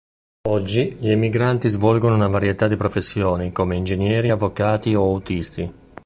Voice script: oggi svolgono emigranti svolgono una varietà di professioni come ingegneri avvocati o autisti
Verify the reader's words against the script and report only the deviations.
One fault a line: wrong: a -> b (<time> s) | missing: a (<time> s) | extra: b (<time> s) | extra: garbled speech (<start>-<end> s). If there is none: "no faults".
wrong: svolgono -> gli (1.0 s)